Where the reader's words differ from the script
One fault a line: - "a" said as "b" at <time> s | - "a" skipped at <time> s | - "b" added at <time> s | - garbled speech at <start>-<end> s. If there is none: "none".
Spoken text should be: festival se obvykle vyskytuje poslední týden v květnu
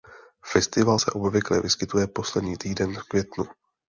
none